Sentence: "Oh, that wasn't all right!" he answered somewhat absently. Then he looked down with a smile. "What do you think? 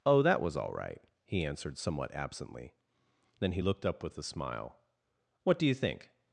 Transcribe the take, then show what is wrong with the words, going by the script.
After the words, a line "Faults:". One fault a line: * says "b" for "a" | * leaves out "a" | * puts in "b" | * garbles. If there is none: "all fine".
"Oh, that was all right!" he answered somewhat absently. Then he looked up with a smile. "What do you think?
Faults:
* says "was" for "wasn't"
* says "up" for "down"